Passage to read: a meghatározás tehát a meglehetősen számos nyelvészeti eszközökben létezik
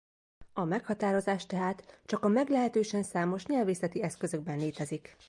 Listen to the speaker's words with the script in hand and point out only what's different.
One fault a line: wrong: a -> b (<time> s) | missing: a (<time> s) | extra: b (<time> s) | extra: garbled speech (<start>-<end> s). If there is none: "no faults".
extra: csak (2.0 s)